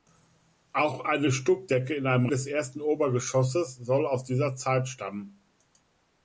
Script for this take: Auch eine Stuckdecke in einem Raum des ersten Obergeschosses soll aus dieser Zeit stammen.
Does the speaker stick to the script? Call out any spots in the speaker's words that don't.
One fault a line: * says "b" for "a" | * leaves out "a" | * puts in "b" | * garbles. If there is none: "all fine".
* leaves out "Raum"